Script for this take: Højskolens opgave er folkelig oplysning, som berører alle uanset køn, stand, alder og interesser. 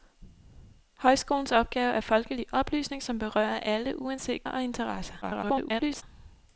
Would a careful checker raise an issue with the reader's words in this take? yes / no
yes